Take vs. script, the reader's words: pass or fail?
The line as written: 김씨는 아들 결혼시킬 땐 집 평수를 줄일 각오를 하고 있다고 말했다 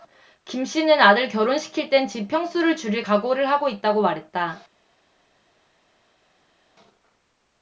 pass